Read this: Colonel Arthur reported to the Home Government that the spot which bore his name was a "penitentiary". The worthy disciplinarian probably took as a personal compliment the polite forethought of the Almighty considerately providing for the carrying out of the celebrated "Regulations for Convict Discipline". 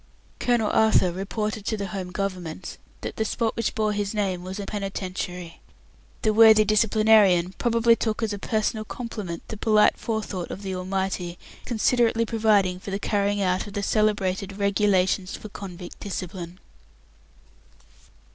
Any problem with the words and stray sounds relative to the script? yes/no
no